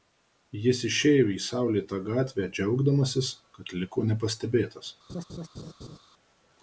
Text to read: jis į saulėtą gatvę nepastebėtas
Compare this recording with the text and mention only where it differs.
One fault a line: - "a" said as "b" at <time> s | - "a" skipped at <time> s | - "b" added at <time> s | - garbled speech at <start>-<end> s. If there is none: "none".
- "išėjo" added at 0.9 s
- "džiaugdamasis kad liko" added at 2.6 s